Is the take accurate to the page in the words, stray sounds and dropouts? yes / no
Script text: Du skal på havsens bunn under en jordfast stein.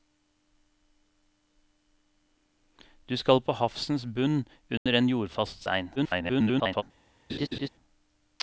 no